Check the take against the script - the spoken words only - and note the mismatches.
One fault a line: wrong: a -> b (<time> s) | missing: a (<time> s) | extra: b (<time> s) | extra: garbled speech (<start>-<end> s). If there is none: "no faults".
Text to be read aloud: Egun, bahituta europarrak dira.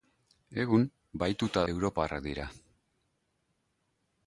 no faults